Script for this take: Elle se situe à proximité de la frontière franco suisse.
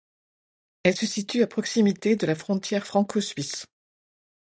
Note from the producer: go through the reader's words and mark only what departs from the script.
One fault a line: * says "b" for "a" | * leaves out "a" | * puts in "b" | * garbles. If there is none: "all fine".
all fine